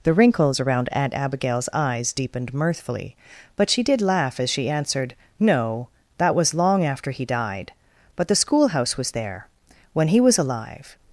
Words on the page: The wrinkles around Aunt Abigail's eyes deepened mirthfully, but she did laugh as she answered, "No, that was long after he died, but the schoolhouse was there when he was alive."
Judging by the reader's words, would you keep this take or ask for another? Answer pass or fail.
pass